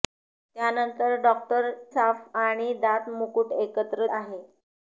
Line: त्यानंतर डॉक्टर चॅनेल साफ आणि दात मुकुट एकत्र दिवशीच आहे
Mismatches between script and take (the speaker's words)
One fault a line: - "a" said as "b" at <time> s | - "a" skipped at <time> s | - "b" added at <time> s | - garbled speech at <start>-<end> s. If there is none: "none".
- "चॅनेल" skipped at 1.7 s
- "दिवशीच" skipped at 4.1 s